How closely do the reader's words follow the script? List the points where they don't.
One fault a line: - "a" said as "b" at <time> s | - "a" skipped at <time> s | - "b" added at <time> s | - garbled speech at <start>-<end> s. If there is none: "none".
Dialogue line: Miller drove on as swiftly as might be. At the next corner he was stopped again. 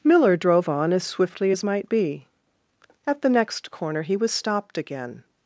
none